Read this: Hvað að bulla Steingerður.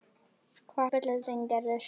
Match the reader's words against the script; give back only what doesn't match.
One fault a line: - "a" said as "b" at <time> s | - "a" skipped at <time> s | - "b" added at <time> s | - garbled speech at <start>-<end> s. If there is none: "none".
none